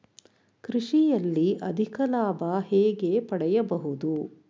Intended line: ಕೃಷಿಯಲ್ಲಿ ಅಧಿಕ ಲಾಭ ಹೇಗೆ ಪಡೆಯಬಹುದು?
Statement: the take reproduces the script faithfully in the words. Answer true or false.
true